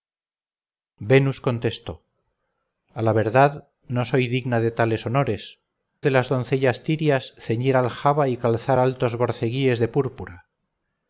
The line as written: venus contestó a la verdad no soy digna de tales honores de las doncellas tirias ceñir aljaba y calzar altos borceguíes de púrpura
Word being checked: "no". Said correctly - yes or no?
yes